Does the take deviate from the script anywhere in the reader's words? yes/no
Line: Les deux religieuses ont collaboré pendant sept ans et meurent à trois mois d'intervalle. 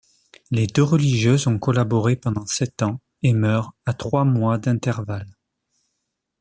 no